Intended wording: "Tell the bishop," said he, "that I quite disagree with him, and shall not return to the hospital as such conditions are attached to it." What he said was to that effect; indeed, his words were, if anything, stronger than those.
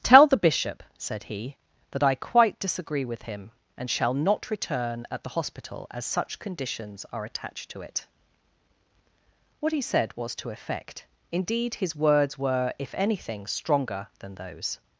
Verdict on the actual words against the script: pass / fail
fail